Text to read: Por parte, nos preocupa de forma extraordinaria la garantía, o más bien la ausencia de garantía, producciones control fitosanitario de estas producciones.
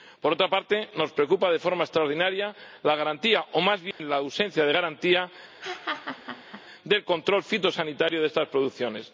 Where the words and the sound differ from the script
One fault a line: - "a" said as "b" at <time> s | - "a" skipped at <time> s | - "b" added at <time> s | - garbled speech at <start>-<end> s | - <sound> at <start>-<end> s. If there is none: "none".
- "otra" added at 0.3 s
- dropout at 3.9-4.0 s
- laugh at 5.6-6.6 s
- "producciones" said as "del" at 6.8 s